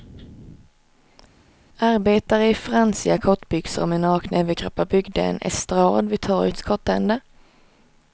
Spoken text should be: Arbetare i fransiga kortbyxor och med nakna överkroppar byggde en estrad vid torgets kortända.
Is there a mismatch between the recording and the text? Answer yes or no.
no